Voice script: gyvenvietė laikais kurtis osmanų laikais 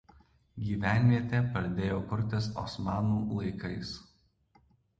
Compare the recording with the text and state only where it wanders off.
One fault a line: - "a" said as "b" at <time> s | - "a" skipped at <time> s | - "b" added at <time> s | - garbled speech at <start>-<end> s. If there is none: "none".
- "laikais" said as "pradėjo" at 1.6 s